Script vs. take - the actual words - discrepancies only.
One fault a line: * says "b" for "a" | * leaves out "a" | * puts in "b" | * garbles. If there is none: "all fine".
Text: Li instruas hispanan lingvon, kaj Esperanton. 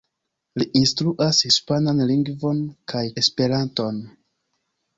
all fine